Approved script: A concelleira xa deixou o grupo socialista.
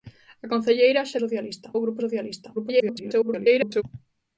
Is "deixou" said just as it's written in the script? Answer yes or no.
no